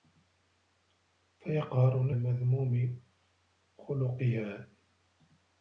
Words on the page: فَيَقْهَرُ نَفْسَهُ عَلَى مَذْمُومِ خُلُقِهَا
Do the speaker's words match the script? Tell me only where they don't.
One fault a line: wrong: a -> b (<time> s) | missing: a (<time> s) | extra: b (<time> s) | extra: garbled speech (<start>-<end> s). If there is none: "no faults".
missing: نَفْسَهُ عَلَى (2.1 s)